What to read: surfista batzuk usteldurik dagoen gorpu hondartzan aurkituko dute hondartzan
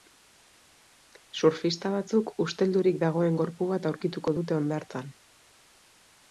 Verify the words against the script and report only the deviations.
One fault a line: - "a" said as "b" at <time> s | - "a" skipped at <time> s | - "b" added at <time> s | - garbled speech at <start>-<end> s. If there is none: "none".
- "hondartzan" said as "bat" at 3.8 s